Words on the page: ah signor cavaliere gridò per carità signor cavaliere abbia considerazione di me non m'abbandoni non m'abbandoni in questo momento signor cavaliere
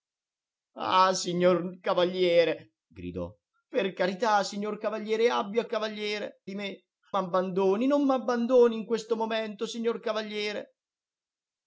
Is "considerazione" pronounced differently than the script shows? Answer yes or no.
yes